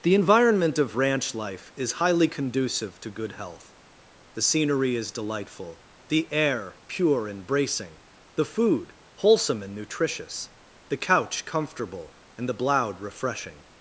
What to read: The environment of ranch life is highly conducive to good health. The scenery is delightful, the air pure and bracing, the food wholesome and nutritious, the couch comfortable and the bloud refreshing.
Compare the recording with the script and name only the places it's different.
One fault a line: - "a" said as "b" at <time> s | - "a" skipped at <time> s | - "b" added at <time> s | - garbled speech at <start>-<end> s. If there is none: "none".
none